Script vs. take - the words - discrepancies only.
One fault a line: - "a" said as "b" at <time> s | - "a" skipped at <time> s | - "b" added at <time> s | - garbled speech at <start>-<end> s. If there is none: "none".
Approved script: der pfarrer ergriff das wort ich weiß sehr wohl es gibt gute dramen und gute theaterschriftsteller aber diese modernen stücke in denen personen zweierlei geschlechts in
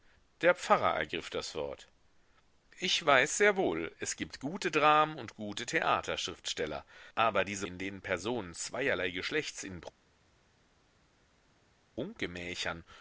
- "modernen stücke" skipped at 7.7 s